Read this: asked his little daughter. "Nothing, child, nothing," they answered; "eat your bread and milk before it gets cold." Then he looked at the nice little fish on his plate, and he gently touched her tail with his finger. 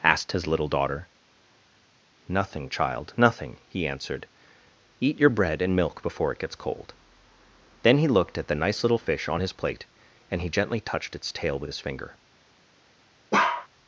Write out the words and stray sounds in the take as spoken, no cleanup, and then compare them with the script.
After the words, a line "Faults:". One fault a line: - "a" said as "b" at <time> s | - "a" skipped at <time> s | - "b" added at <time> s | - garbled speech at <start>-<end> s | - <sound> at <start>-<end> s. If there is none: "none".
asked his little daughter. "Nothing, child, nothing," he answered; "eat your bread and milk before it gets cold." Then he looked at the nice little fish on his plate, and he gently touched its tail with his finger.
Faults:
- "they" said as "he" at 3.7 s
- "her" said as "its" at 11.1 s
- bark at 13.3-13.7 s